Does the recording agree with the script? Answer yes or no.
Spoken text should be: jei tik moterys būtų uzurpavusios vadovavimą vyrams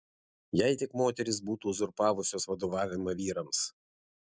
yes